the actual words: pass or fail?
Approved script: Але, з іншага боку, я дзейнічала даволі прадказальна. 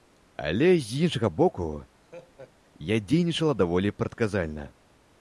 pass